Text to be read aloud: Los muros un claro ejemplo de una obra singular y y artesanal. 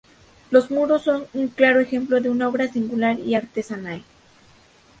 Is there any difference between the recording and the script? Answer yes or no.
yes